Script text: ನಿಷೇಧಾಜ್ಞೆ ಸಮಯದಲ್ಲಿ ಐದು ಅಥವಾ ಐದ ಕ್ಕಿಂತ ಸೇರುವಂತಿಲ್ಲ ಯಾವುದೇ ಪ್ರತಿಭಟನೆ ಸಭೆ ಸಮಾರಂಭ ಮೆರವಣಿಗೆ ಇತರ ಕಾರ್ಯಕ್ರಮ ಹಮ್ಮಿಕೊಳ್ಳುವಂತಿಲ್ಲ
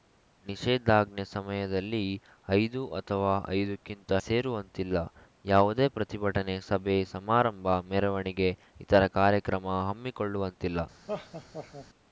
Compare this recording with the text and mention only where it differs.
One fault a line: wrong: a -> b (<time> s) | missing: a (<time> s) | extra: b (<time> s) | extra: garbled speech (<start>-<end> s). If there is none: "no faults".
no faults